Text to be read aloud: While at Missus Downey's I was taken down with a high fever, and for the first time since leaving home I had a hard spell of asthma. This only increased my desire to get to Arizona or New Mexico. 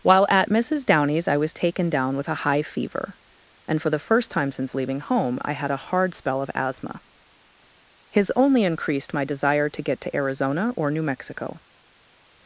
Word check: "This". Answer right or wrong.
wrong